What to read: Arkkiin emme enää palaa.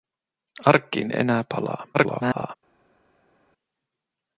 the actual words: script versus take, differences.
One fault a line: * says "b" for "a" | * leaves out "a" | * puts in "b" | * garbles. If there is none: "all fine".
* leaves out "emme"
* garbles